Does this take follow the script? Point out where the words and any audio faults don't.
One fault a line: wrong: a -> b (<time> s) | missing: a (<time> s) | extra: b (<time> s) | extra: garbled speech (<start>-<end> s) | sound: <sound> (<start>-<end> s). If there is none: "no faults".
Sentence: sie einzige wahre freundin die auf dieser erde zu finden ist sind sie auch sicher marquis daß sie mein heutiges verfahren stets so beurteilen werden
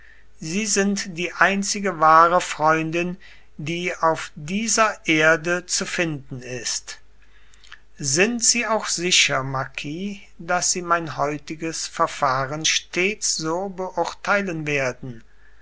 extra: sind die (0.7 s)